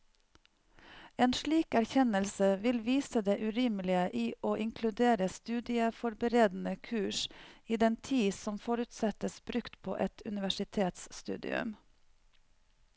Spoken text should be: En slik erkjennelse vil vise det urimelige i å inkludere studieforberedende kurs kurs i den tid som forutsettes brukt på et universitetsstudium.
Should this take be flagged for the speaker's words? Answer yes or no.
yes